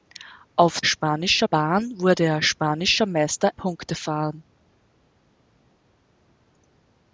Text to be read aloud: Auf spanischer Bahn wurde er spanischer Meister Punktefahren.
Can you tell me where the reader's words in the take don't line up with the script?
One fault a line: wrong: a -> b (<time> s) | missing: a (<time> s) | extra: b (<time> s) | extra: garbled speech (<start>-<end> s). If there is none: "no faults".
no faults